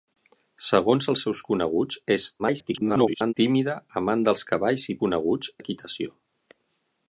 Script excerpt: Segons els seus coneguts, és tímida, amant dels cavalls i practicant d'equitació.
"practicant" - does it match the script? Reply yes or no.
no